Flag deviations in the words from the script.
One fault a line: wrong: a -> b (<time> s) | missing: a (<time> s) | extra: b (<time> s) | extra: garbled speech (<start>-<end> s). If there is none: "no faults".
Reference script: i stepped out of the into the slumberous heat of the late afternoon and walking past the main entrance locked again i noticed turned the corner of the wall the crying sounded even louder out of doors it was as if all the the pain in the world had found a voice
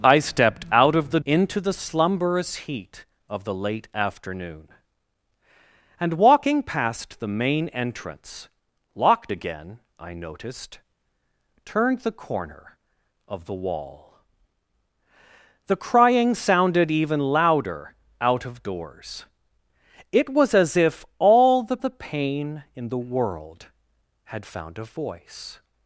no faults